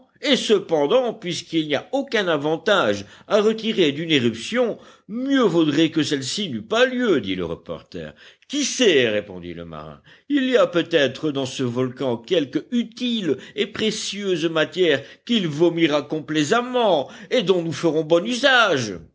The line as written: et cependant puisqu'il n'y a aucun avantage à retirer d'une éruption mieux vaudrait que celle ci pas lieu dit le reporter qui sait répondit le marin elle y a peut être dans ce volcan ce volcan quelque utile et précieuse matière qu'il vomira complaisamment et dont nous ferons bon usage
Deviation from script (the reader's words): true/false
true